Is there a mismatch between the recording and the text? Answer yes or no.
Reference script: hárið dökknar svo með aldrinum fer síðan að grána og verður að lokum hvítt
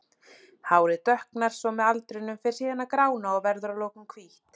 no